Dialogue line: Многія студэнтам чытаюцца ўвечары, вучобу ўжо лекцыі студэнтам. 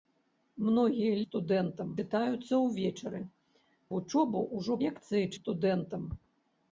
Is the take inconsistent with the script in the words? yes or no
no